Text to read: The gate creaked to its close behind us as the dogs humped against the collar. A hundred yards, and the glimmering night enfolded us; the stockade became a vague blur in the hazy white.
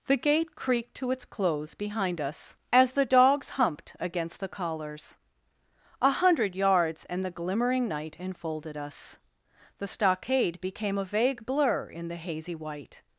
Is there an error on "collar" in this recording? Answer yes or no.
yes